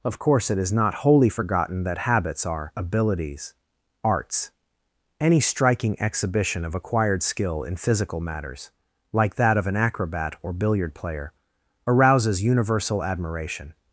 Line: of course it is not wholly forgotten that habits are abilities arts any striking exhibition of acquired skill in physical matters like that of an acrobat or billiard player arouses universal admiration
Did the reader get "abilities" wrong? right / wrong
right